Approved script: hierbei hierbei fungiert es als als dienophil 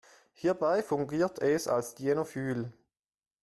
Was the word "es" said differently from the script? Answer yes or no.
no